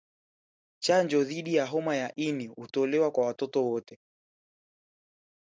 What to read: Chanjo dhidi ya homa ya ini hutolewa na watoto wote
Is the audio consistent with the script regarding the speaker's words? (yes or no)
no